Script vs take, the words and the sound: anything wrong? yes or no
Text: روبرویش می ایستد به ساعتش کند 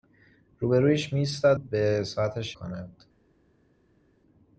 no